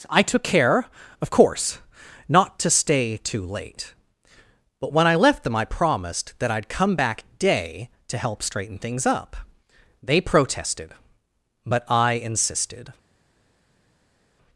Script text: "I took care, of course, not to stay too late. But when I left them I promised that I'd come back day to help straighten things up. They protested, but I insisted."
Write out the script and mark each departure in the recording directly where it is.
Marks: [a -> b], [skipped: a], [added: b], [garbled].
"I took care, of course, not to stay too late. But when I left them I promised that I'd come back day to help straighten things up. They protested, but I insisted."